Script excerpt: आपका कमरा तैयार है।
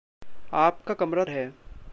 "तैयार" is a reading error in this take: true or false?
true